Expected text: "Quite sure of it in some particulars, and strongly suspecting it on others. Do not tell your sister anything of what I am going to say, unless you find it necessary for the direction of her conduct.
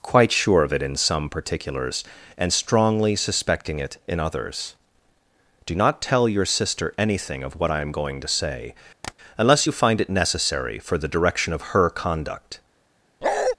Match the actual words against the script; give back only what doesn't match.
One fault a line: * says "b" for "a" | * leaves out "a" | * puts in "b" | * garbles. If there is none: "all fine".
* says "in" for "on"